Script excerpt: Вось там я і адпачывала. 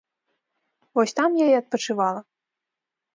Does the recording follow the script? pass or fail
pass